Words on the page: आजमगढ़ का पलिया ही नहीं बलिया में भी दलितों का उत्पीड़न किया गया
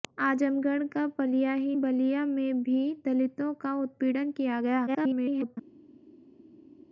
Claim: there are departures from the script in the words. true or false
true